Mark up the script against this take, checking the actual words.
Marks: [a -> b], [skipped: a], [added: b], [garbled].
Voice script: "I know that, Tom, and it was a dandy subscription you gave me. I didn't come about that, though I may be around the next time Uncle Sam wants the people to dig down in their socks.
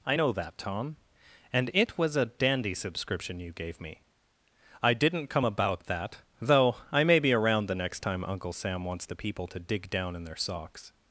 "I know that, Tom, and it was a dandy subscription you gave me. I didn't come about that, though I may be around the next time Uncle Sam wants the people to dig down in their socks.